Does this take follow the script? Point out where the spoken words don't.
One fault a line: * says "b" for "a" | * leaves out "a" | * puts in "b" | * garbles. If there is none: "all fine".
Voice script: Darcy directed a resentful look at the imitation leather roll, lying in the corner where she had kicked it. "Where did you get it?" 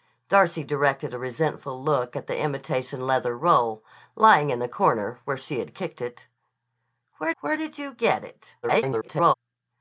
* puts in "where"
* garbles